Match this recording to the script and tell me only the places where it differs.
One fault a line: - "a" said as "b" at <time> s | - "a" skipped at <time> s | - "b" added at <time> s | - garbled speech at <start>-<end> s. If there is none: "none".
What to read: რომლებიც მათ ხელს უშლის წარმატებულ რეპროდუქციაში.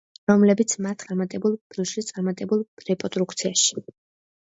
- "ხელს" said as "წარმატებულ" at 1.0 s